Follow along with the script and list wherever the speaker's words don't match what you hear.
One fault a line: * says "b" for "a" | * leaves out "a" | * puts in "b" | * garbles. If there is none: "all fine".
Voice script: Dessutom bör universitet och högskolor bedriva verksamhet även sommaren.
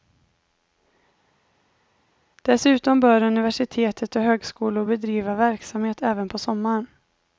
* puts in "på"